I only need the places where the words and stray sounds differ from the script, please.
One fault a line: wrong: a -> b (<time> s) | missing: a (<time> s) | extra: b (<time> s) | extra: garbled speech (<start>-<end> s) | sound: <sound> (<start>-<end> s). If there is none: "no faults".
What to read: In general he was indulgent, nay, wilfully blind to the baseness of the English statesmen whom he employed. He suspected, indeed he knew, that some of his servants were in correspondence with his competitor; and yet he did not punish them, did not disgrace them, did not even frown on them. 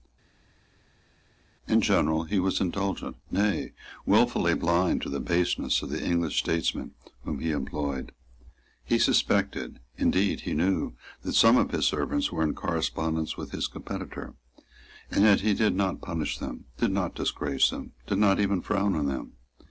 no faults